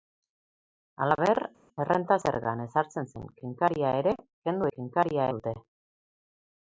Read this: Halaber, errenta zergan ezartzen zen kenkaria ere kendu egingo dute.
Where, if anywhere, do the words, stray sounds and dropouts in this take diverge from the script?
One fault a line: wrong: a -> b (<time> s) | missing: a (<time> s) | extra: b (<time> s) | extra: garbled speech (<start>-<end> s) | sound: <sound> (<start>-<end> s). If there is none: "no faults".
wrong: egingo -> kenkaria (4.8 s)